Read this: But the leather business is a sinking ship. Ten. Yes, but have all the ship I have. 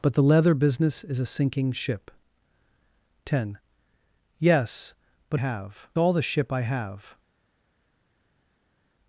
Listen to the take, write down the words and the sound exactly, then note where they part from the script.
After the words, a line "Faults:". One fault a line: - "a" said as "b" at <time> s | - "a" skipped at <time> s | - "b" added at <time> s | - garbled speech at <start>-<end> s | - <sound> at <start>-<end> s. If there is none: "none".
But the leather business is a sinking ship. Ten. Yes, but have all the ship I have.
Faults:
none